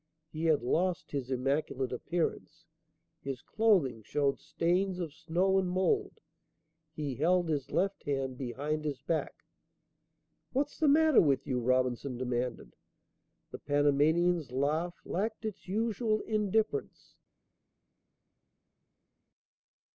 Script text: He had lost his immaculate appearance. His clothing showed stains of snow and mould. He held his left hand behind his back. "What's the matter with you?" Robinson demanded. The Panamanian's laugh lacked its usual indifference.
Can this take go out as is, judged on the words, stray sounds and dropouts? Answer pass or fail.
pass